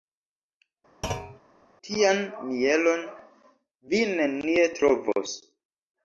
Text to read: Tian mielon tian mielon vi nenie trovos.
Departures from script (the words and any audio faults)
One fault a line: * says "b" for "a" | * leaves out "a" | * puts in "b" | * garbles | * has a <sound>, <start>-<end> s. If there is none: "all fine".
* has a thud, 1.0-1.4 s
* leaves out "tian mielon"